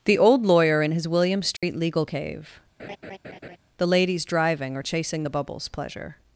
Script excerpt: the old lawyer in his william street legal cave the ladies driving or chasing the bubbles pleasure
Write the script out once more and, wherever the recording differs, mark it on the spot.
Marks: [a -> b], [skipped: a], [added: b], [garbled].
the old lawyer in his william street legal cave the ladies driving or chasing the bubbles pleasure